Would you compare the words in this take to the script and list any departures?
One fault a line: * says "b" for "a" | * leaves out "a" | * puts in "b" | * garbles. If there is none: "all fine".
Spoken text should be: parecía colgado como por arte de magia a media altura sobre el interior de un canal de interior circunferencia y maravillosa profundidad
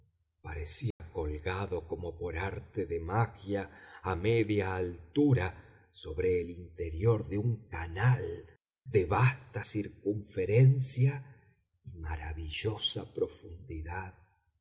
* says "vasta" for "interior"